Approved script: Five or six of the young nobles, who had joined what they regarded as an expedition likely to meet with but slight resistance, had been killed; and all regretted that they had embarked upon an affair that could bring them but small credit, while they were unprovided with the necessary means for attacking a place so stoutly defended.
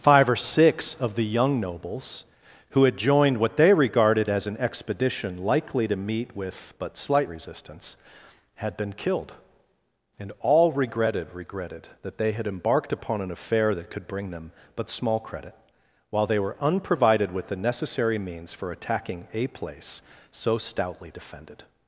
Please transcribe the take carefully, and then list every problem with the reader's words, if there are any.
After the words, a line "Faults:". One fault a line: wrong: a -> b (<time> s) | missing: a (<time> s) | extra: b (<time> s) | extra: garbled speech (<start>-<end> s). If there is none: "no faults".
Five or six of the young nobles, who had joined what they regarded as an expedition likely to meet with but slight resistance, had been killed; and all regretted regretted that they had embarked upon an affair that could bring them but small credit, while they were unprovided with the necessary means for attacking a place so stoutly defended.
Faults:
extra: regretted (11.3 s)